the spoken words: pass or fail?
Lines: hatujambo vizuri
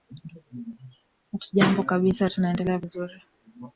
fail